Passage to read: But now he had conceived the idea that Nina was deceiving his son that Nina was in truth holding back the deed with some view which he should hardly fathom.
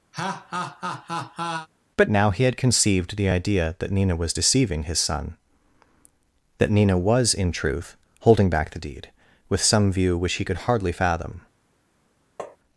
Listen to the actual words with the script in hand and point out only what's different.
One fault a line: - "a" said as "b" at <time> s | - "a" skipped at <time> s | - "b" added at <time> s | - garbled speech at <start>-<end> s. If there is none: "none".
- "should" said as "could" at 10.4 s